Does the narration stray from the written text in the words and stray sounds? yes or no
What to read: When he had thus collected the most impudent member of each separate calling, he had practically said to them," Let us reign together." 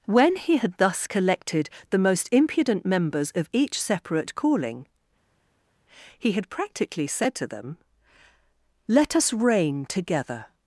yes